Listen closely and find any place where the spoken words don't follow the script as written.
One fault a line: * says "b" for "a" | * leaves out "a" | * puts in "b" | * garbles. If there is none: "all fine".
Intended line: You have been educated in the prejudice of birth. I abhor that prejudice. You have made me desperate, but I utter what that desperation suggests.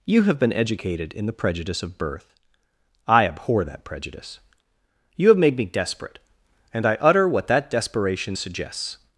* says "and" for "but"